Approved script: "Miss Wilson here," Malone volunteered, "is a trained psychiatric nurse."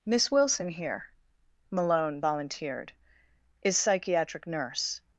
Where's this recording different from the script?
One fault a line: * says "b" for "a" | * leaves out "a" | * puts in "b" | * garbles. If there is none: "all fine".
* leaves out "a trained"